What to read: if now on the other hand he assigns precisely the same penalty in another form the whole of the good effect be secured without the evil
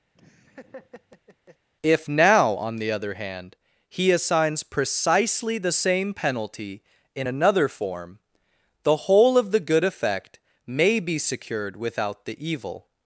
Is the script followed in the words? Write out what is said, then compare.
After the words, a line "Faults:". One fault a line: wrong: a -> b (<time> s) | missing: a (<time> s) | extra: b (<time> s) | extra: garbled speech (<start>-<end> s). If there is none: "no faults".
if now on the other hand he assigns precisely the same penalty in another form the whole of the good effect may be secured without the evil
Faults:
extra: may (10.6 s)